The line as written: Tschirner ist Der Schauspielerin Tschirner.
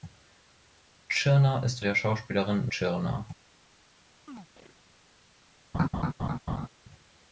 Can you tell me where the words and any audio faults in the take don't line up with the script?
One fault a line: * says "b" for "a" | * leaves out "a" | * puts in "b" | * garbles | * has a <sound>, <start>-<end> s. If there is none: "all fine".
* has a chirp, 4.3-4.8 s
* has a laugh, 5.7-6.7 s